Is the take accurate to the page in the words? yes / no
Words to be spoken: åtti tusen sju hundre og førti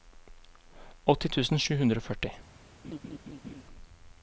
yes